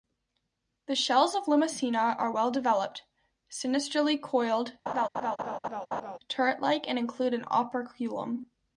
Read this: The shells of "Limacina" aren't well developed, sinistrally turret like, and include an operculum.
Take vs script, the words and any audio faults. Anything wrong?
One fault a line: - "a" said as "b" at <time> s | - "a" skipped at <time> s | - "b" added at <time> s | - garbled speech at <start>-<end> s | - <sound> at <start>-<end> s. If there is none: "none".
- "aren't" said as "are" at 2.2 s
- "coiled" added at 4.2 s
- laugh at 4.9-6.2 s